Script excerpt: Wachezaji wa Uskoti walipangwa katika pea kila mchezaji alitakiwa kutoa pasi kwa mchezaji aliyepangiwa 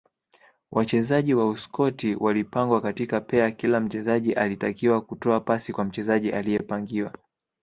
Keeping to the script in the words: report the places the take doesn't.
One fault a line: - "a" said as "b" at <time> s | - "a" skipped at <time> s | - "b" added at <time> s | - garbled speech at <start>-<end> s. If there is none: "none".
none